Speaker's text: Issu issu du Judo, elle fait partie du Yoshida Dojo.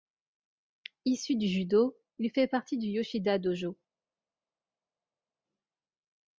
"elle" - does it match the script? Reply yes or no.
no